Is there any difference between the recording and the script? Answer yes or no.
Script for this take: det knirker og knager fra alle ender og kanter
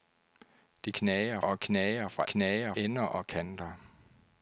yes